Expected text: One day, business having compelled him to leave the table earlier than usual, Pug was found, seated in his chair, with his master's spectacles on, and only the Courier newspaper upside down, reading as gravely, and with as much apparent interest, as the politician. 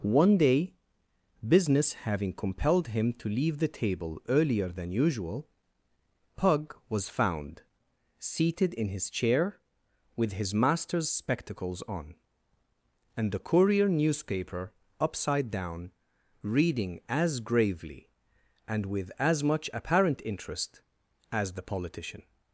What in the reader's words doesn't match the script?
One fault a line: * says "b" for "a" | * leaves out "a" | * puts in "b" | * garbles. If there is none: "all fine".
* leaves out "only"